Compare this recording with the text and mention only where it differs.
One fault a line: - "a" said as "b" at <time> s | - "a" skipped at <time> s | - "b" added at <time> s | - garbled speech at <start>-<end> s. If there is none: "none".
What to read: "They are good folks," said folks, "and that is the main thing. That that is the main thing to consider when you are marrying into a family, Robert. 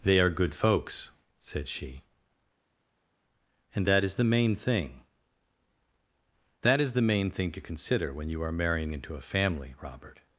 - "folks" said as "she" at 1.7 s
- "that" skipped at 6.8 s